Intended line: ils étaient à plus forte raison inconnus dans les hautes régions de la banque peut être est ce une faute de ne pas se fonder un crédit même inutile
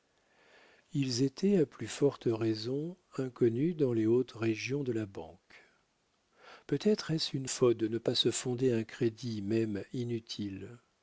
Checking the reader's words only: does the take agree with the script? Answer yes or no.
yes